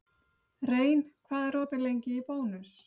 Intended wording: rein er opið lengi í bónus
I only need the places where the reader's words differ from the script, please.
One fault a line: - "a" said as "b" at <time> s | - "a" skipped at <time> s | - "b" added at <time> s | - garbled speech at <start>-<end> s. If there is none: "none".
- "hvað" added at 1.3 s